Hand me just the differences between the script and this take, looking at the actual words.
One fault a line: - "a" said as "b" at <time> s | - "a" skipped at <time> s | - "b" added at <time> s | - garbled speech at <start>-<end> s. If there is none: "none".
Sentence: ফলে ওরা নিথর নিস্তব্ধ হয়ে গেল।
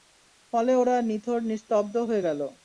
none